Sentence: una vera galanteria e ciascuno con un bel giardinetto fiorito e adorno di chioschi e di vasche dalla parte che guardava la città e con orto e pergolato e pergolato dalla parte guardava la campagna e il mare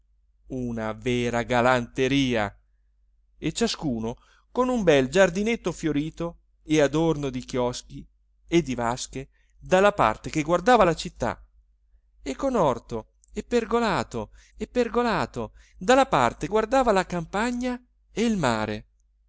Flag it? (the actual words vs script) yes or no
no